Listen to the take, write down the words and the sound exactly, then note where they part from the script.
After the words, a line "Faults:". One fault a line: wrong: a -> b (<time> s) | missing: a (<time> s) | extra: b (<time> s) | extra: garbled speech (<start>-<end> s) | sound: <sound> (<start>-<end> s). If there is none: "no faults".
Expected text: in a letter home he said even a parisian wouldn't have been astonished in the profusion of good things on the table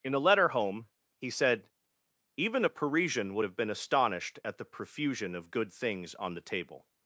in a letter home he said even a parisian would have been astonished at the profusion of good things on the table
Faults:
wrong: wouldn't -> would (3.3 s)
wrong: in -> at (4.4 s)